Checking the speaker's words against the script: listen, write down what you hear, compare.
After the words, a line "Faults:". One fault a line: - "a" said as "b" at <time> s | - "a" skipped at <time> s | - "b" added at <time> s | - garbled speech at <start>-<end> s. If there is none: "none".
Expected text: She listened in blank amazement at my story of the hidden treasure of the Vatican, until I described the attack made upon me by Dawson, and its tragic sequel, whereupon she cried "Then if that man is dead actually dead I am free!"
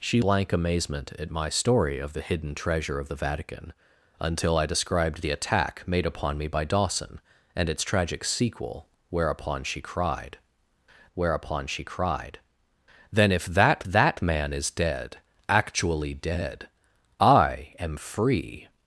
She blank amazement at my story of the hidden treasure of the Vatican, until I described the attack made upon me by Dawson, and its tragic sequel, whereupon she cried whereupon she cried "Then if that that man is dead actually dead I am free!"
Faults:
- "listened in" skipped at 0.2 s
- "whereupon she cried" added at 11.1 s
- "that" added at 13.8 s